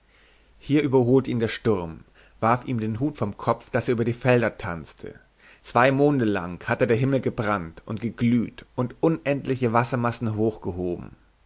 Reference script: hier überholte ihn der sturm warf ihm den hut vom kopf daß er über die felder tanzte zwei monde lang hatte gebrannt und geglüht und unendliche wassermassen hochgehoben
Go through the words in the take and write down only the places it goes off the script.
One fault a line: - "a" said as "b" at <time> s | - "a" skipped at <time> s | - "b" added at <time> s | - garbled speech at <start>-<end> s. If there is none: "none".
- "der himmel" added at 6.9 s